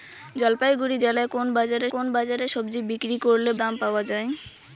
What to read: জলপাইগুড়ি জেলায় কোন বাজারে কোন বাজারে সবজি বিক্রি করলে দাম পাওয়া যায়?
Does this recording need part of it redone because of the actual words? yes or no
no